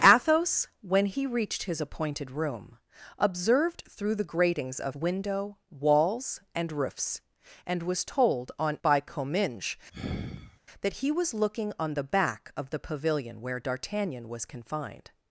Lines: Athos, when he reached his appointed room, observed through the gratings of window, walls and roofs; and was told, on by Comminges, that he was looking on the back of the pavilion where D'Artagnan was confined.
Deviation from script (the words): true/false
false